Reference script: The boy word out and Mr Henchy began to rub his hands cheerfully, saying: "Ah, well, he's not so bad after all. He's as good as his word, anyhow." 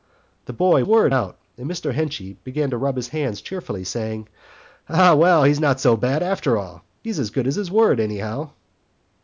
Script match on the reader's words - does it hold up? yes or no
yes